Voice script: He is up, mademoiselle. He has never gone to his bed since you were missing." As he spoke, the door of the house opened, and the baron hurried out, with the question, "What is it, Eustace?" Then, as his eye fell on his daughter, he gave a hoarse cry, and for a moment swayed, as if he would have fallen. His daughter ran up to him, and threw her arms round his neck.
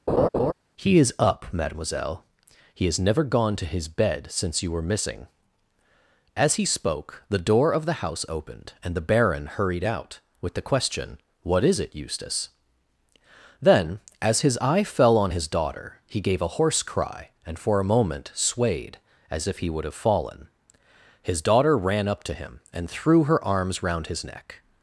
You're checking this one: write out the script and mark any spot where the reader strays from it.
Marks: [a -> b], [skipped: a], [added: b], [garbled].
He is up, mademoiselle. He has never gone to his bed since you were missing." As he spoke, the door of the house opened, and the baron hurried out, with the question, "What is it, Eustace?" Then, as his eye fell on his daughter, he gave a hoarse cry, and for a moment swayed, as if he would have fallen. His daughter ran up to him, and threw her arms round his neck.